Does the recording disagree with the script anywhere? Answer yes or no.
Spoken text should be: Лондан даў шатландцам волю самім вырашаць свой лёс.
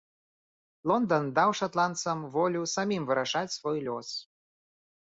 no